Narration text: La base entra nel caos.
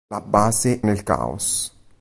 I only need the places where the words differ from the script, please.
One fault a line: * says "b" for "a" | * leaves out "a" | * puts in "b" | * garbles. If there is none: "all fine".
* leaves out "entra"